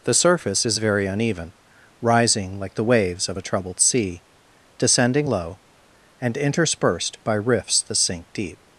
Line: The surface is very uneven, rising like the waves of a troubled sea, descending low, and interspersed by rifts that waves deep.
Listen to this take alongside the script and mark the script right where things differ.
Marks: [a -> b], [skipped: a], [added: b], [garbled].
The surface is very uneven, rising like the waves of a troubled sea, descending low, and interspersed by rifts that [waves -> sink] deep.